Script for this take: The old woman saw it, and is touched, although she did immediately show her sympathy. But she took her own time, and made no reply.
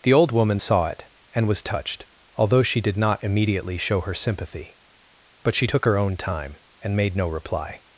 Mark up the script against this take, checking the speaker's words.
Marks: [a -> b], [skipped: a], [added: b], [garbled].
The old woman saw it, and [is -> was] touched, although she did [added: not] immediately show her sympathy. But she took her own time, and made no reply.